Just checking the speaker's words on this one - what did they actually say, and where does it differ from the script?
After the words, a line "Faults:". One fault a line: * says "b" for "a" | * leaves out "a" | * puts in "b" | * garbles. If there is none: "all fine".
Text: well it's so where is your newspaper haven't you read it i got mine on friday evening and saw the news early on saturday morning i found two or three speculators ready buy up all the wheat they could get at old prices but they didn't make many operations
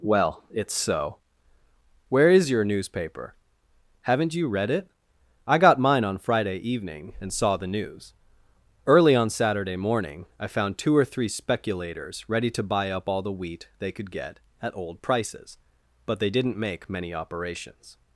well it's so where is your newspaper haven't you read it i got mine on friday evening and saw the news early on saturday morning i found two or three speculators ready to buy up all the wheat they could get at old prices but they didn't make many operations
Faults:
* puts in "to"